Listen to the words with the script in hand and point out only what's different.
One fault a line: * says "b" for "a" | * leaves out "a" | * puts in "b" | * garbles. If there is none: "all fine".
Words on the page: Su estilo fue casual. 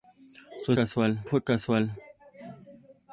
* says "casual" for "estilo"